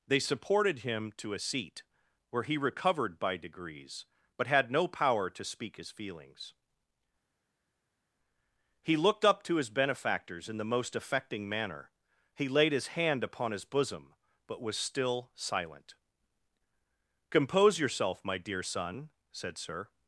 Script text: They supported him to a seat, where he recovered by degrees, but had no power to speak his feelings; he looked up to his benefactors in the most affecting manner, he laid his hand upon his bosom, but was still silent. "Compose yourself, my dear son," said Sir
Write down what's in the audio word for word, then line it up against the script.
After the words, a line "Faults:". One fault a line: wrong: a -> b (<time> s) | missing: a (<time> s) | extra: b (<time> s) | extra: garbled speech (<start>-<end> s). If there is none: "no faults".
They supported him to a seat, where he recovered by degrees, but had no power to speak his feelings; he looked up to his benefactors in the most affecting manner, he laid his hand upon his bosom, but was still silent. "Compose yourself, my dear son," said Sir
Faults:
no faults